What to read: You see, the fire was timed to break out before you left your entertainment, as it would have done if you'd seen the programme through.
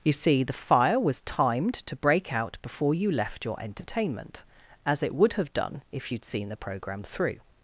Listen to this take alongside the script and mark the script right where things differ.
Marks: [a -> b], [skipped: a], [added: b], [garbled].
You see, the fire was timed to break out before you left your entertainment, as it would have done if you'd seen the programme through.